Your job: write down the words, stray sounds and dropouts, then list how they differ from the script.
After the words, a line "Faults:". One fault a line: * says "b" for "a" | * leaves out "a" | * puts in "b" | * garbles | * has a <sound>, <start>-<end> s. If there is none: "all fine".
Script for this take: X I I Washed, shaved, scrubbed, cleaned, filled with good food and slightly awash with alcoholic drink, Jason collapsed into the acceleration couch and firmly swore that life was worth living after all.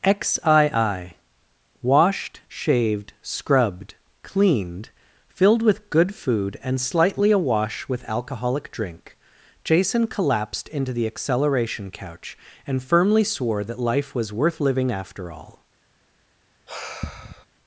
X I I Washed, shaved, scrubbed, cleaned, filled with good food and slightly awash with alcoholic drink, Jason collapsed into the acceleration couch and firmly swore that life was worth living after all.
Faults:
* has a sigh, 16.7-17.5 s